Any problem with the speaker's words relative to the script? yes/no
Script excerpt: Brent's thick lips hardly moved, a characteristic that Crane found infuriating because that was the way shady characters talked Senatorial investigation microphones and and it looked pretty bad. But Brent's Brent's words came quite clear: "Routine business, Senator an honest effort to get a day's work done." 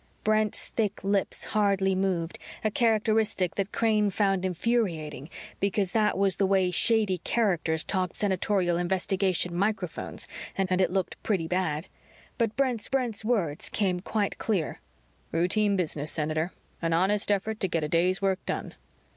no